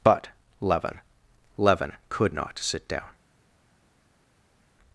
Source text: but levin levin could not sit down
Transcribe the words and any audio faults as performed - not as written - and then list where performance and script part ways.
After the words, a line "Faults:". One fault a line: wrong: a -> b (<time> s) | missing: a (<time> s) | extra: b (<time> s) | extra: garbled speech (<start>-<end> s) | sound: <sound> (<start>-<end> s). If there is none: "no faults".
but levin levin could not sit down
Faults:
no faults